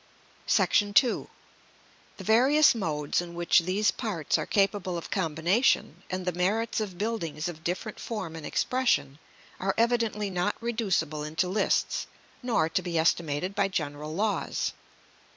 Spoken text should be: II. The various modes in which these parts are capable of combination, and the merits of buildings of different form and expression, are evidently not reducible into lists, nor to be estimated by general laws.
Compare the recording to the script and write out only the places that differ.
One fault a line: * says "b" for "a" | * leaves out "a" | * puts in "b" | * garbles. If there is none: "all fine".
all fine